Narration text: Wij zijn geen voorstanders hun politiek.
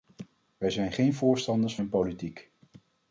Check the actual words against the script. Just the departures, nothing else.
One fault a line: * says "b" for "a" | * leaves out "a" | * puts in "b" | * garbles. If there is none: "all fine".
all fine